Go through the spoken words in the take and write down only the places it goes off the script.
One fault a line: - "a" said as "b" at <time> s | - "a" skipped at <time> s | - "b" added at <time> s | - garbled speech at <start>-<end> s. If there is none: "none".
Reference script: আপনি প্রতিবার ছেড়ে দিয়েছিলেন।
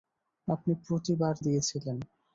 - "ছেড়ে" skipped at 1.3 s